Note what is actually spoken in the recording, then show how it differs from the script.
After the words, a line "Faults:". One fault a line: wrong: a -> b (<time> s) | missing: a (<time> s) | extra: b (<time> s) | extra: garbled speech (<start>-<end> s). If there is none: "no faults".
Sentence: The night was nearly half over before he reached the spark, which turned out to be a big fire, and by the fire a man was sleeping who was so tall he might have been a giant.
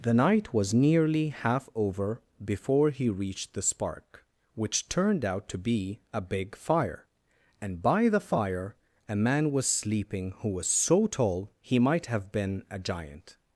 The night was nearly half over before he reached the spark, which turned out to be a big fire, and by the fire a man was sleeping who was so tall he might have been a giant.
Faults:
no faults